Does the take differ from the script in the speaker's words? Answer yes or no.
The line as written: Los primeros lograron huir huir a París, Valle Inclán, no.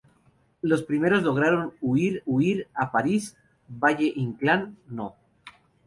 no